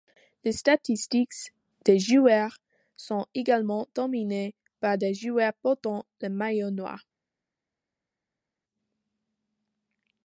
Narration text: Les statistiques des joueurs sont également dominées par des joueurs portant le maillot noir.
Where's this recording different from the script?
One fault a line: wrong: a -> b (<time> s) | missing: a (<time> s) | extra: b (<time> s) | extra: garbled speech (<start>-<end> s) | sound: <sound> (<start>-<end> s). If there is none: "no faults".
no faults